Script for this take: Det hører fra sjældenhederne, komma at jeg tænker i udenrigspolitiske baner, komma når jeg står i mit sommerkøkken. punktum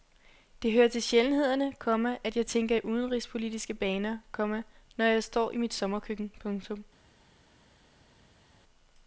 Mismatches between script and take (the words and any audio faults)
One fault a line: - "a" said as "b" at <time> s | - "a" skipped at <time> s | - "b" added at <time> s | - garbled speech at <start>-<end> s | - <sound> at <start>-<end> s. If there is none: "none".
- "fra" said as "til" at 0.9 s